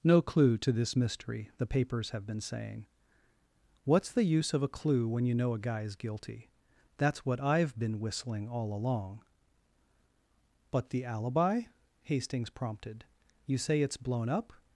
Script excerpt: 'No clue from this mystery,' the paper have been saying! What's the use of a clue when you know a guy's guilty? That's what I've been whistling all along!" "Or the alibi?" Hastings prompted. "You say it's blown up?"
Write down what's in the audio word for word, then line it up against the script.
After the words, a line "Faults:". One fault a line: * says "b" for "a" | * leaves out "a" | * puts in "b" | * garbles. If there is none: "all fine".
'No clue to this mystery,' the papers have been saying! What's the use of a clue when you know a guy's guilty? That's what I've been whistling all along!" "But the alibi?" Hastings prompted. "You say it's blown up?"
Faults:
* says "to" for "from"
* says "papers" for "paper"
* says "But" for "Or"